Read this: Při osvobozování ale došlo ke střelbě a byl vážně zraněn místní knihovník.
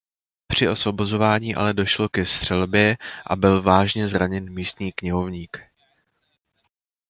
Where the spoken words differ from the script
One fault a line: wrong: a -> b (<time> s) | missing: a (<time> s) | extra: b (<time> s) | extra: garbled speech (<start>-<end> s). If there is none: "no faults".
no faults